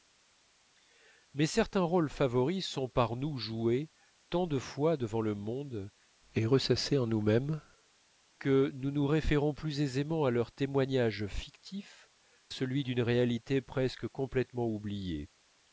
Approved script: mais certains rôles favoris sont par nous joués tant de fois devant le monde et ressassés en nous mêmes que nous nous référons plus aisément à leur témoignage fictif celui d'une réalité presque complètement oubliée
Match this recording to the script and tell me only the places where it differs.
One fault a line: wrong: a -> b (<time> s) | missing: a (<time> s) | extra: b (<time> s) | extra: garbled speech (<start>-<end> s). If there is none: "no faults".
no faults